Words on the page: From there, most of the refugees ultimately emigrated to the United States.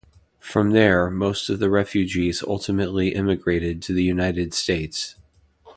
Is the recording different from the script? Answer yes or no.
no